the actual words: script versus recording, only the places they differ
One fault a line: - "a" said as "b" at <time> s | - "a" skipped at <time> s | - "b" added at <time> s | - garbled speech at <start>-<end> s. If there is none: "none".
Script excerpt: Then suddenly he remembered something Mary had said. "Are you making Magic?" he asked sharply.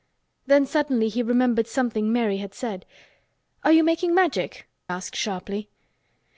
- "he" skipped at 4.7 s